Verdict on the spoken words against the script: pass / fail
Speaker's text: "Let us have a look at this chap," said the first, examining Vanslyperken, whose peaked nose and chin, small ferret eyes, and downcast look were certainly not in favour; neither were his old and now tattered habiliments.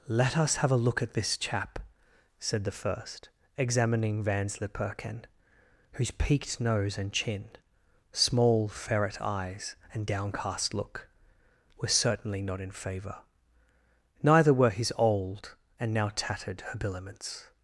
pass